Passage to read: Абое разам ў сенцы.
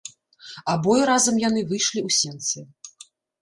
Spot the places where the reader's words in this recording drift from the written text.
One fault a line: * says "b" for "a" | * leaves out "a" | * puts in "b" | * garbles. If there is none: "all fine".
* puts in "яны выйшлі"